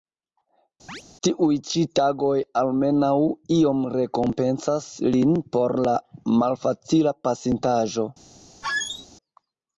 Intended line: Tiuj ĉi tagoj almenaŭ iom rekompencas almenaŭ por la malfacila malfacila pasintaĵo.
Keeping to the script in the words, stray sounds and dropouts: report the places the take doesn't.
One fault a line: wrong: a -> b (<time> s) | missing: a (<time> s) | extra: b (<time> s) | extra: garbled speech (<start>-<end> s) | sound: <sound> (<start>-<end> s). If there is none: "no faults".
sound: chirp (0.9-1.0 s)
wrong: almenaŭ -> lin (5.1 s)
missing: malfacila (7.1 s)
sound: squeak (8.6-9.1 s)